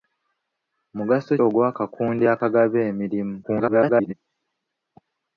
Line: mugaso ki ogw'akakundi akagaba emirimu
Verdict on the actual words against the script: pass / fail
fail